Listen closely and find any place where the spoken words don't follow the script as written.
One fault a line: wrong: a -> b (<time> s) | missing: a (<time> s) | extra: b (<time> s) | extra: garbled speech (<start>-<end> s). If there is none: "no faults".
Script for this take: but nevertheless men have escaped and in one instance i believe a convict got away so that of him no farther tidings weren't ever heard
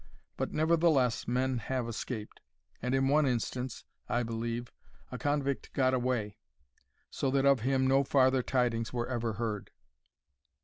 wrong: weren't -> were (8.9 s)